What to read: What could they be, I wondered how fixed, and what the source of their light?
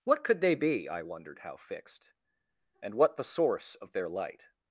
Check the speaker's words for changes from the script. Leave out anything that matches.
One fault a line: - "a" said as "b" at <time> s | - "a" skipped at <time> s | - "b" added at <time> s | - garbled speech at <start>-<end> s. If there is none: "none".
none